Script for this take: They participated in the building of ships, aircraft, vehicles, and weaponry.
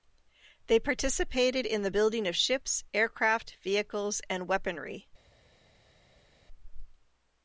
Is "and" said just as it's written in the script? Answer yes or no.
yes